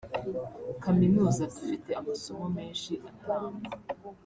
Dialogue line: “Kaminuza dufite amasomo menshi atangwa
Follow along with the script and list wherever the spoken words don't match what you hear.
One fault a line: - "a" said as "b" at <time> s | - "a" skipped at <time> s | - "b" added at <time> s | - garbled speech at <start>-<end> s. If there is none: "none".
none